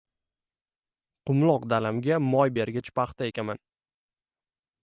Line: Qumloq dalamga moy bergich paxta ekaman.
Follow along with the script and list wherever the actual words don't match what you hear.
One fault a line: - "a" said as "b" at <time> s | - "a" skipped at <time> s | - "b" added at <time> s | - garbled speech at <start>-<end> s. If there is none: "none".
none